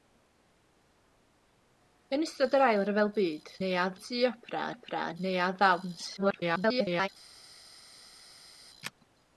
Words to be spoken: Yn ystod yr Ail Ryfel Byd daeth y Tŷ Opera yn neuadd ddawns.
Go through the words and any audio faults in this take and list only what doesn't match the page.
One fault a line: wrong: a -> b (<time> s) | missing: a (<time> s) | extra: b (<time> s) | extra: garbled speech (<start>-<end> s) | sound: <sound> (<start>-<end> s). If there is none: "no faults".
wrong: daeth -> neuadd (3.6 s)
extra: Opera (4.7 s)
extra: garbled speech (6.2-7.1 s)